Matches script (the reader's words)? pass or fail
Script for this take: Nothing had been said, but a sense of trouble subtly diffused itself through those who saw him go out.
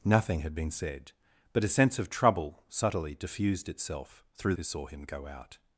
fail